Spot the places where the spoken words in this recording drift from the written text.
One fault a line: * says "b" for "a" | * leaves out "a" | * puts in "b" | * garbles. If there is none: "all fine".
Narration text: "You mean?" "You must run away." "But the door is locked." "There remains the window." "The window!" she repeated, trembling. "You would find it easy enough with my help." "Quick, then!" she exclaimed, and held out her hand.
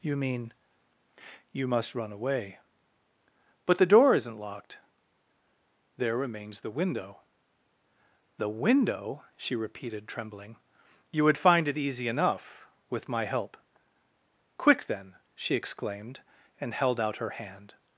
* says "isn't" for "is"